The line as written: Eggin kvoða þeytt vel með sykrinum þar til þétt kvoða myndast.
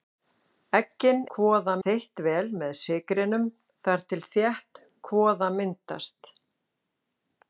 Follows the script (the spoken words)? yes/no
yes